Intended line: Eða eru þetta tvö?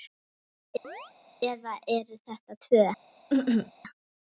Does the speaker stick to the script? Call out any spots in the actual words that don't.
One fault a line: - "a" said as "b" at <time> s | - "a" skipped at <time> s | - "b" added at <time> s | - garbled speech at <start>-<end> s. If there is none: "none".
none